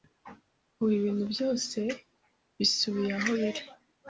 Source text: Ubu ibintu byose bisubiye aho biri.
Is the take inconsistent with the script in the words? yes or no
no